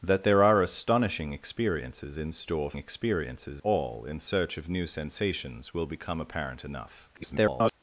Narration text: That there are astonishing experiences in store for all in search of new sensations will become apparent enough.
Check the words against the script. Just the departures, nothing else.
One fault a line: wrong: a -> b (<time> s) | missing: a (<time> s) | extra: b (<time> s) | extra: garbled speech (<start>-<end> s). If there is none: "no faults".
wrong: for -> experiences (2.8 s)
extra: garbled speech (7.1-7.7 s)